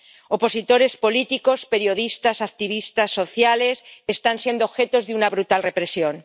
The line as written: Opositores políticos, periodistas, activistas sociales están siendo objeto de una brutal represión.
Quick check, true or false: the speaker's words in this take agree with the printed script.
true